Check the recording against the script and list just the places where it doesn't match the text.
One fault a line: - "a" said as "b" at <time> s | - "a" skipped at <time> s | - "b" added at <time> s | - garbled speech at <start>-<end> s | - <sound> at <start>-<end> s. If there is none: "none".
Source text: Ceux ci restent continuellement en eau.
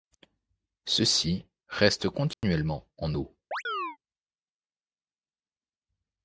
- dropout at 2.3-2.4 s
- chirp at 3.5-4.0 s